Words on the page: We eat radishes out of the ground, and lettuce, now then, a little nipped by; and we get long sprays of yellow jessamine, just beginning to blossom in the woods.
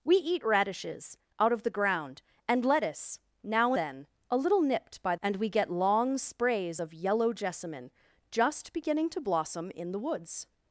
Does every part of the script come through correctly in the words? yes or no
yes